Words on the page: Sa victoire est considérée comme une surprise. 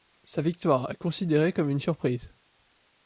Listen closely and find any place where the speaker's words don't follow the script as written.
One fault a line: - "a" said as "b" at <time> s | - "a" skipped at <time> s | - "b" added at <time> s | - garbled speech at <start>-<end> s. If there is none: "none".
none